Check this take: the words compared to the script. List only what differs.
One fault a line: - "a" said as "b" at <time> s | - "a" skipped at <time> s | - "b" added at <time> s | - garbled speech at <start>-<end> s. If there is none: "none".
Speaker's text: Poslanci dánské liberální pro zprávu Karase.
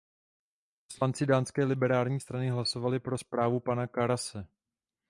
- "strany hlasovali" added at 2.2 s
- "pana" added at 3.6 s